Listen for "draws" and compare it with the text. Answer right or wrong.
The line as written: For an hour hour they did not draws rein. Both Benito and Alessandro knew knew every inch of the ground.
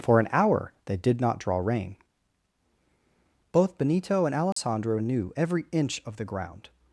wrong